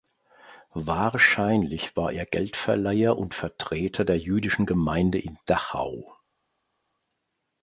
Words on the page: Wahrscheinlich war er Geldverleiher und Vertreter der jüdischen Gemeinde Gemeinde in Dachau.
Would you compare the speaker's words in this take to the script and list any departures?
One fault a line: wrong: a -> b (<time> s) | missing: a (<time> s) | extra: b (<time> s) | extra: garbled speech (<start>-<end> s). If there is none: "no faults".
missing: Gemeinde (5.2 s)